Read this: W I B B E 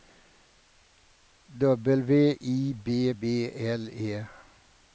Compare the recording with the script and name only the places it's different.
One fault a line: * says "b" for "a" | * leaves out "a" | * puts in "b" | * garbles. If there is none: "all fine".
* puts in "L"